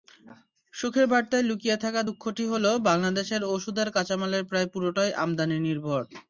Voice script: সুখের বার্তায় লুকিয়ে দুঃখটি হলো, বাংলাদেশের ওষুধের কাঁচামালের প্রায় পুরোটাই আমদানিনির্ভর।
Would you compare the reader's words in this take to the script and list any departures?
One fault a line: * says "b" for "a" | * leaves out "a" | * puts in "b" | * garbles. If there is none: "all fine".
* puts in "থাকা"